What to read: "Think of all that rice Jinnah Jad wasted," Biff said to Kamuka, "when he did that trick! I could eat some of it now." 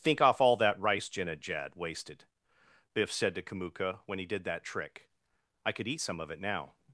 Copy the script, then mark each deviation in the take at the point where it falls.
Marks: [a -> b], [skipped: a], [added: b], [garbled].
"Think [of -> off] all that rice Jinnah Jad wasted," Biff said to Kamuka, "when he did that trick! I could eat some of it now."